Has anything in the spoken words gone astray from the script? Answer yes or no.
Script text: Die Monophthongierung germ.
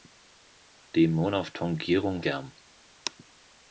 no